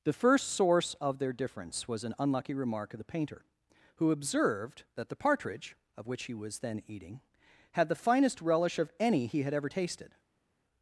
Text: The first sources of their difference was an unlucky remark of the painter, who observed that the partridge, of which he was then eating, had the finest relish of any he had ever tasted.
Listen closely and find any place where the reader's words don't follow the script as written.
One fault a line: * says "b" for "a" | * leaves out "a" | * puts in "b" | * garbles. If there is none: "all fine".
* says "source" for "sources"